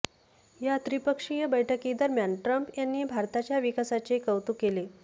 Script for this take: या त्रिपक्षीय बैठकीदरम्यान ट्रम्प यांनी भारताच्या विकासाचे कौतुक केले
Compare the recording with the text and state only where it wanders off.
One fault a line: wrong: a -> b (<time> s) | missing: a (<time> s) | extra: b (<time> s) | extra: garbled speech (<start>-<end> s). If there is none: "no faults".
no faults